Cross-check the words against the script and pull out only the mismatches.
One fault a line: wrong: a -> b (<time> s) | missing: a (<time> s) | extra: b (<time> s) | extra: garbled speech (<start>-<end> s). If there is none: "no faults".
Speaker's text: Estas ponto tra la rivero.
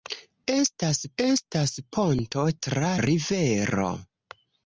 extra: estas (1.2 s)
missing: la (2.9 s)